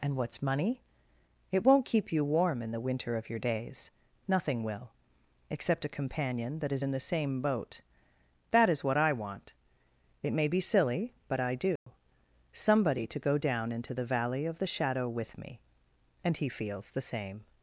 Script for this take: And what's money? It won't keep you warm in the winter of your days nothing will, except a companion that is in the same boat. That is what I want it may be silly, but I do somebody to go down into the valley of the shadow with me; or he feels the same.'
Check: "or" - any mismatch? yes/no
yes